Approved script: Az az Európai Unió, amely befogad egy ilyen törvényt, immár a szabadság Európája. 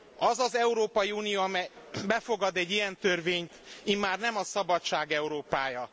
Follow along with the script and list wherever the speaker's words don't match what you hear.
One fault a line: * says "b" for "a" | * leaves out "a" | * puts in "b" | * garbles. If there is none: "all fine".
* puts in "nem"